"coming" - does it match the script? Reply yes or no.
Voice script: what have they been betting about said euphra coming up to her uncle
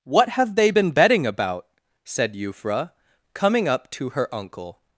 yes